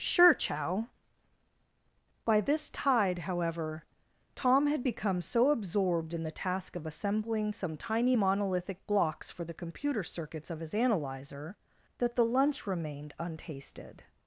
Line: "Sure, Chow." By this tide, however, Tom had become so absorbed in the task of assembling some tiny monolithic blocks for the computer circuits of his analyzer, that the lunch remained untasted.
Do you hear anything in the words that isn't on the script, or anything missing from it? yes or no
no